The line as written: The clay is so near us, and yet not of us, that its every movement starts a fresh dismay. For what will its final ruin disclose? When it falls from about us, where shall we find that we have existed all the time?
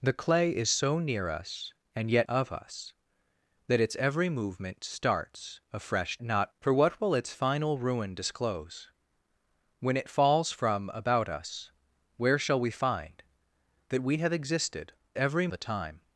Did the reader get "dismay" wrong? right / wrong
wrong